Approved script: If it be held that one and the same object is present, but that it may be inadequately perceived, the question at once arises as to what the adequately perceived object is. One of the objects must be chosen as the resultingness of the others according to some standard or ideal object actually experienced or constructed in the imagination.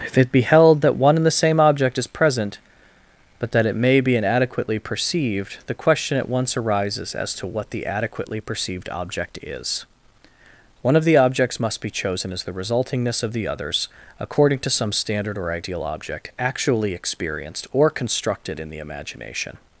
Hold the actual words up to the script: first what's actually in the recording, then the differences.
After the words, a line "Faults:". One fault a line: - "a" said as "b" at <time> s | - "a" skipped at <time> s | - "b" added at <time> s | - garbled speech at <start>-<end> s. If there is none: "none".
If it be held that one and the same object is present, but that it may be inadequately perceived, the question at once arises as to what the adequately perceived object is. One of the objects must be chosen as the resultingness of the others according to some standard or ideal object actually experienced or constructed in the imagination.
Faults:
none